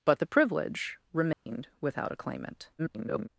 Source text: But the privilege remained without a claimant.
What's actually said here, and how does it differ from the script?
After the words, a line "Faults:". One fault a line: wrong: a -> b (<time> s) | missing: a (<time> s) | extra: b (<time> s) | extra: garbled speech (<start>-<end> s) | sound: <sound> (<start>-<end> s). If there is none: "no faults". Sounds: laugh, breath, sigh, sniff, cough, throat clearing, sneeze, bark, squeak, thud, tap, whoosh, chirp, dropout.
But the privilege remained without a claimant. [garbled]
Faults:
sound: dropout (1.3-1.5 s)
extra: garbled speech (2.8-3.3 s)